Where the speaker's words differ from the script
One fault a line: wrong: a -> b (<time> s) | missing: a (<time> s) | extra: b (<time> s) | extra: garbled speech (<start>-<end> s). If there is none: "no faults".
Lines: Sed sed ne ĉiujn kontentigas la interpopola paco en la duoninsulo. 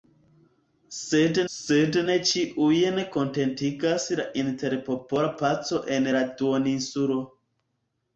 no faults